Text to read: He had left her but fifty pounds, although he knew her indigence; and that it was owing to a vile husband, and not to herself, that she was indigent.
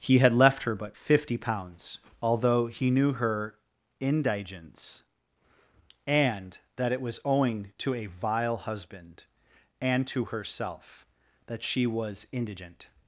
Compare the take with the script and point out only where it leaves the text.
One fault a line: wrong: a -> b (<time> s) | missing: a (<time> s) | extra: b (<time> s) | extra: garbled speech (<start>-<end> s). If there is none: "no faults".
missing: not (10.1 s)